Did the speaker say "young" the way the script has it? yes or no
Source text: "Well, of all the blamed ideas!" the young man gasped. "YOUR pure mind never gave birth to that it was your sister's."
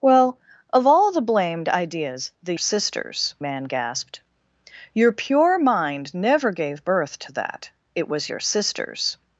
no